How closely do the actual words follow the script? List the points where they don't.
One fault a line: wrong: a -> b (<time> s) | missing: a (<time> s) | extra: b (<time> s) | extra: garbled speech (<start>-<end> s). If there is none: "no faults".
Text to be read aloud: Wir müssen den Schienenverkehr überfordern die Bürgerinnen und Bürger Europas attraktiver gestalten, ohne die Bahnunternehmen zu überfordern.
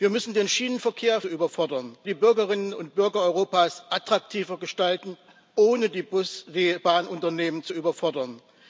no faults